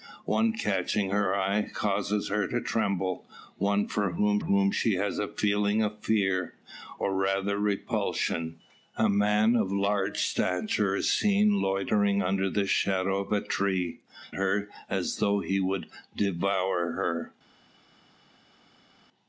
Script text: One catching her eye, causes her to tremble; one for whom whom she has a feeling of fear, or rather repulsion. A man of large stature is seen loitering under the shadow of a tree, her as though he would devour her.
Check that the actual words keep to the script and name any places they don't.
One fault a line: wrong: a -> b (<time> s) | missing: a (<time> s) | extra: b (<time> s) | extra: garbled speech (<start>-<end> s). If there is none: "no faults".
no faults